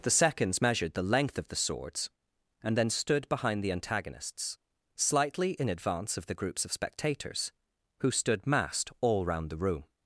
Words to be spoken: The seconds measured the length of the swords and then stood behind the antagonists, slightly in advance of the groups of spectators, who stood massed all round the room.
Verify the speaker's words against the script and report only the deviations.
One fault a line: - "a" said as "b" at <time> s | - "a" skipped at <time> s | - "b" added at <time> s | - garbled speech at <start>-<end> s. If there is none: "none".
none